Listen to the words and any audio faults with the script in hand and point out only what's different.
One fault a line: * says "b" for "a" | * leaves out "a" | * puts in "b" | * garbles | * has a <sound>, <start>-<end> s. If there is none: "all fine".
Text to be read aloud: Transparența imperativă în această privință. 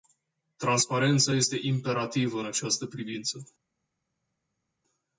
* puts in "este"